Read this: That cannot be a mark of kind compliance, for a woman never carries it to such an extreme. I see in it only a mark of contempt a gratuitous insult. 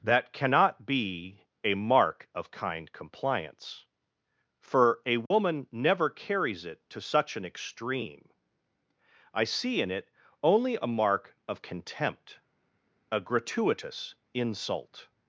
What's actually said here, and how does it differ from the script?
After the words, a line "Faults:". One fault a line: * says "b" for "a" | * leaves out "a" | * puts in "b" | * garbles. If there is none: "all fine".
That cannot be a mark of kind compliance, for a woman never carries it to such an extreme. I see in it only a mark of contempt a gratuitous insult.
Faults:
all fine